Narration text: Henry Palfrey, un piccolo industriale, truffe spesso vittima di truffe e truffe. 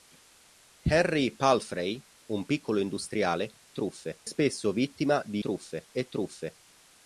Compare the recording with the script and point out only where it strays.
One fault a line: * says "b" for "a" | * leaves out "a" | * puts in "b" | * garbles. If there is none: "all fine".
all fine